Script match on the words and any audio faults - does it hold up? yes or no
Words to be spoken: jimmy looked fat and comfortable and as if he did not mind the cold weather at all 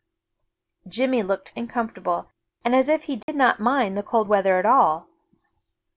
no